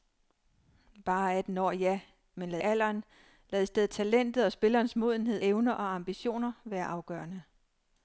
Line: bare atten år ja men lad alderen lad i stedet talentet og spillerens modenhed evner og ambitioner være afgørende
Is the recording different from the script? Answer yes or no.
no